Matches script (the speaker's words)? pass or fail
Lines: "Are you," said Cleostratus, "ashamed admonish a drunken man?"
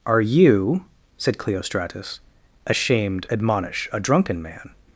pass